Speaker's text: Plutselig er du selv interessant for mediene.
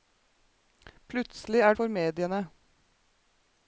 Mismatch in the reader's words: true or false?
true